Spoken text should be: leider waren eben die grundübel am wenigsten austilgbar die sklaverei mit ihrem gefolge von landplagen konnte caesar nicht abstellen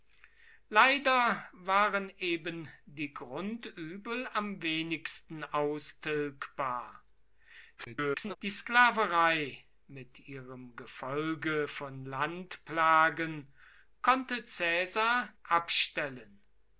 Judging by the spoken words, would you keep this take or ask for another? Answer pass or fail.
fail